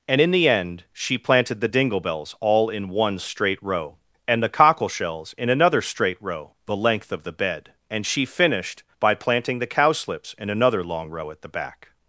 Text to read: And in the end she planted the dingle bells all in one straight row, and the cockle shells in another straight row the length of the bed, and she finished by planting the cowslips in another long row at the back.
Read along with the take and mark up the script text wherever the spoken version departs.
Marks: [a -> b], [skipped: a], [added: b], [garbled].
And in the end she planted the dingle bells all in one straight row, and the cockle shells in another straight row the length of the bed, and she finished by planting the cowslips in another long row at the back.